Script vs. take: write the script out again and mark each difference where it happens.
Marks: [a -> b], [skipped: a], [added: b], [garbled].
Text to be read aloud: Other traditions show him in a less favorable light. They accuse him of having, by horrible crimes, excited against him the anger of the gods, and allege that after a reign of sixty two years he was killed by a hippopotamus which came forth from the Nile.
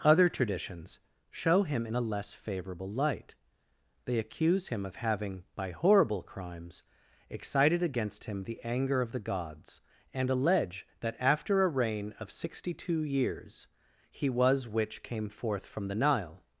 Other traditions show him in a less favorable light. They accuse him of having, by horrible crimes, excited against him the anger of the gods, and allege that after a reign of sixty two years he was [skipped: killed by a hippopotamus] which came forth from the Nile.